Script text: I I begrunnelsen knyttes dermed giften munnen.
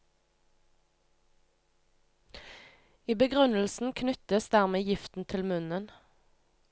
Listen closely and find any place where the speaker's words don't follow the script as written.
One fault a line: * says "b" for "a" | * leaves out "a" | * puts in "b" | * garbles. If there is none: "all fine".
* leaves out "I"
* puts in "til"